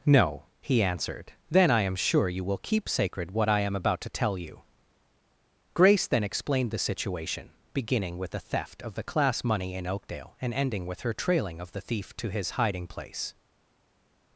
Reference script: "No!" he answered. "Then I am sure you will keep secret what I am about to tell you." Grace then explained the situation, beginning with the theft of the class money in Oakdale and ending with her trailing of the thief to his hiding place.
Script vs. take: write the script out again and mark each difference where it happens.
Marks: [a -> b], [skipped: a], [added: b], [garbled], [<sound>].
"No!" he answered. "Then I am sure you will keep [secret -> sacred] what I am about to tell you." Grace then explained the situation, beginning with the theft of the class money in Oakdale and ending with her trailing of the thief to his hiding place.